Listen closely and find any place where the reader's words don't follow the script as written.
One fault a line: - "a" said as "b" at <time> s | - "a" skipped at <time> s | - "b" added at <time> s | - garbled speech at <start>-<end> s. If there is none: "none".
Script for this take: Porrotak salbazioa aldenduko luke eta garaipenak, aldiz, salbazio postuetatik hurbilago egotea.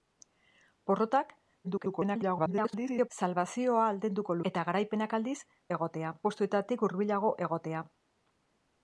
- garbled speech at 1.6-3.1 s
- "luke" skipped at 4.4 s
- "salbazio" said as "egotea" at 5.8 s